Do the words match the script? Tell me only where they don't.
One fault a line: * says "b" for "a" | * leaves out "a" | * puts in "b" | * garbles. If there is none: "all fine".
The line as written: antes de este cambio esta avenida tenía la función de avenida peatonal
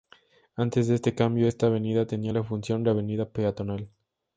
all fine